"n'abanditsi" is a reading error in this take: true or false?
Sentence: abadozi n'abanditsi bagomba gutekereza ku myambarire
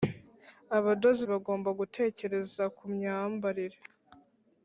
true